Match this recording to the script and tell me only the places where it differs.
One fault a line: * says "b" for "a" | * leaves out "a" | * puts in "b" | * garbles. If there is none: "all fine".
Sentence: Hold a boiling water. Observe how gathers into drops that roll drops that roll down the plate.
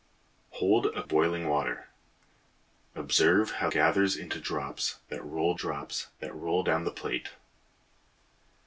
all fine